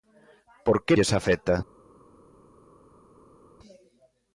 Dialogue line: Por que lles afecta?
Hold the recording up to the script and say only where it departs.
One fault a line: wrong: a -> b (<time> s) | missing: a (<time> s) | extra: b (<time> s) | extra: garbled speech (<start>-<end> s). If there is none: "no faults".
no faults